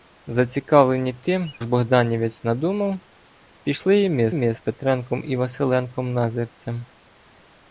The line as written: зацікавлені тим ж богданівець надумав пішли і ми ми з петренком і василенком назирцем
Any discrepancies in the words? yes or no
no